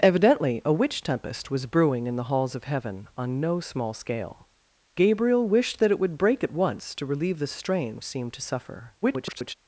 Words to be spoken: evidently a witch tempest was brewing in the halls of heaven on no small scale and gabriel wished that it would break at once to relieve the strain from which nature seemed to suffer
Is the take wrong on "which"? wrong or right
wrong